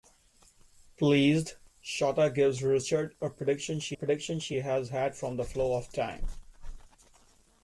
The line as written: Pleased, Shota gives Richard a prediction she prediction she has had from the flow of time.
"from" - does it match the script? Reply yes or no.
yes